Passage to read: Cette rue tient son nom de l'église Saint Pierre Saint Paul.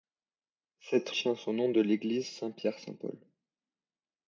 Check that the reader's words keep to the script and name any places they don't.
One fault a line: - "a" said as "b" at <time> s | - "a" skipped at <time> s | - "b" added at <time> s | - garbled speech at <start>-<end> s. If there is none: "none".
- "rue" skipped at 1.1 s